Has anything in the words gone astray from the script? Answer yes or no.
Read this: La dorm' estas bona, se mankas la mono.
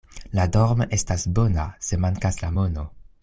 no